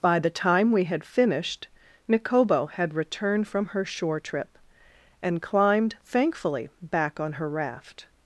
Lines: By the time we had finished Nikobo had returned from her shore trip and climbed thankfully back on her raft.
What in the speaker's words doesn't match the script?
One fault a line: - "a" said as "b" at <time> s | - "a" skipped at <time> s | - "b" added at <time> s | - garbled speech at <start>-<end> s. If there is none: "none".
none